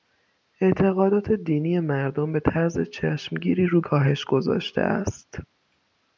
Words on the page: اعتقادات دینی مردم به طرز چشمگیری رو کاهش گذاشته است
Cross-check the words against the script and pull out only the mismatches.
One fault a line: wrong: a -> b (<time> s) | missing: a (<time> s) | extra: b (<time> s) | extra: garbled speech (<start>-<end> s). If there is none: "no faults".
no faults